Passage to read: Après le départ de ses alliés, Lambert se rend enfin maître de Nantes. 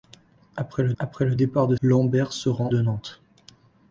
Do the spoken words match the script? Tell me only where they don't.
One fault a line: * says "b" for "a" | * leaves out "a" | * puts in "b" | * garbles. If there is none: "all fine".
* puts in "après le"
* leaves out "ses alliés"
* leaves out "enfin maître"